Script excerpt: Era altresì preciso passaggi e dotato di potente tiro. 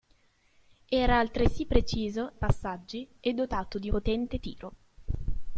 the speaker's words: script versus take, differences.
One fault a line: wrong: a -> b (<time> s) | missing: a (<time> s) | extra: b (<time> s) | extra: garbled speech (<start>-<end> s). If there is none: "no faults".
no faults